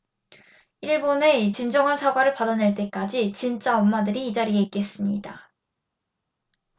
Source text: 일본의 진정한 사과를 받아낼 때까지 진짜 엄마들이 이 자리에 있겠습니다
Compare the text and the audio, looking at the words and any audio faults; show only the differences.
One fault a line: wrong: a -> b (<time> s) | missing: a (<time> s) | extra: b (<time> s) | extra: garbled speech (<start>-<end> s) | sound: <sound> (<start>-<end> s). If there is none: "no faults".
no faults